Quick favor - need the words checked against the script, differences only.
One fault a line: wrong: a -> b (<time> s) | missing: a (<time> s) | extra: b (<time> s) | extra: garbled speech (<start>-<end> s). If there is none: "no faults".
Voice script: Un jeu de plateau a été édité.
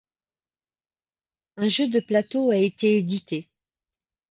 no faults